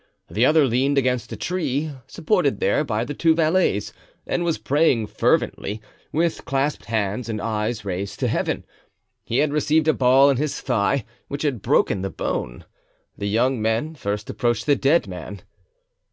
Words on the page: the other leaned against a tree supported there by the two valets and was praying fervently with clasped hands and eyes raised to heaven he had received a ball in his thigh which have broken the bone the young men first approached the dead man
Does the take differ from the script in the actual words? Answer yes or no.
yes